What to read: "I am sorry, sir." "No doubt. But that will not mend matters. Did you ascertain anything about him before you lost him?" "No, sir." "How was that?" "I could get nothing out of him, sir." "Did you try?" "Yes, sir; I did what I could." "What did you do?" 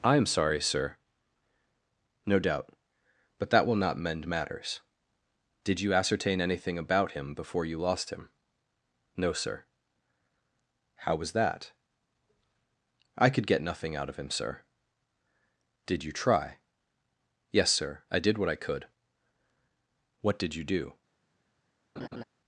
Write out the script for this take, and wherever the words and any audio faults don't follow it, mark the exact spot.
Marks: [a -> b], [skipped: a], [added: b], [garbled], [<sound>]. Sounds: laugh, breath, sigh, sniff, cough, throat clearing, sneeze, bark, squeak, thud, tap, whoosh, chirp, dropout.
"I am sorry, sir." "No doubt. But that will not mend matters. Did you ascertain anything about him before you lost him?" "No, sir." "How was that?" "I could get nothing out of him, sir." "Did you try?" "Yes, sir; I did what I could." "What did you do?" [laugh]